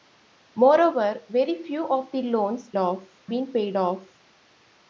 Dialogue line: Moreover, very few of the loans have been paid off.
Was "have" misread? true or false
true